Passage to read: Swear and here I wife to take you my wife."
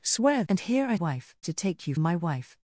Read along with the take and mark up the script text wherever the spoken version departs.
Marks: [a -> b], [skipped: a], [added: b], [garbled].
Swear and here I wife to take you my wife."